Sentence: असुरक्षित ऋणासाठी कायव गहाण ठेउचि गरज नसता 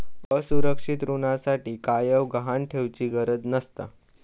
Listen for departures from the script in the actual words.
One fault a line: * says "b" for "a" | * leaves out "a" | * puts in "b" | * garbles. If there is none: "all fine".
all fine